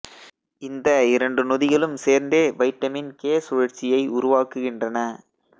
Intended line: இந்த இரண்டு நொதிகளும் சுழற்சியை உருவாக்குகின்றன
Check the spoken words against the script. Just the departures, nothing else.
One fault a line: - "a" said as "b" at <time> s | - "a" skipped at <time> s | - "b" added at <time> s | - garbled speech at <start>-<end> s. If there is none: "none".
- "சேர்ந்தே வைட்டமின் கே" added at 2.0 s